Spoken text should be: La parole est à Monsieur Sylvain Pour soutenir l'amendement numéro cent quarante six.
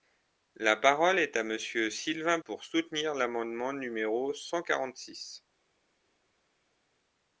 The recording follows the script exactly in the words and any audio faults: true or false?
true